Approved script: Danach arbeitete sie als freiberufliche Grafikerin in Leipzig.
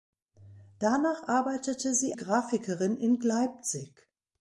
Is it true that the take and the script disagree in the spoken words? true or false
true